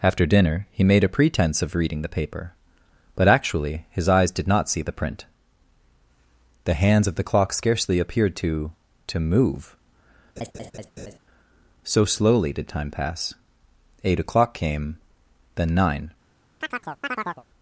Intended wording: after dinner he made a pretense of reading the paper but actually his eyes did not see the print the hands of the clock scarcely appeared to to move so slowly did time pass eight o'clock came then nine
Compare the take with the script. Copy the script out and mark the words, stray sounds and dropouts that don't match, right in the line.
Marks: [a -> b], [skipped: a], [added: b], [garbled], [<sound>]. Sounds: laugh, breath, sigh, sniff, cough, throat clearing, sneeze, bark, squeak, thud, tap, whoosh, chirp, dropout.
after dinner he made a pretense of reading the paper but actually his eyes did not see the print the hands of the clock scarcely appeared to to move [laugh] so slowly did time pass eight o'clock came then nine [chirp]